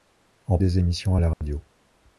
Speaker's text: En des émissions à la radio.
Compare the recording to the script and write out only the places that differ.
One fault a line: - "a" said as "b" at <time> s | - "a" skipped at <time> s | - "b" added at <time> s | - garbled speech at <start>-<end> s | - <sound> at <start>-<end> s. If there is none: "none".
- dropout at 1.3-1.4 s